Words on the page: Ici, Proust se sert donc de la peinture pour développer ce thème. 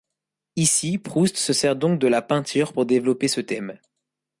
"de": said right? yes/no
yes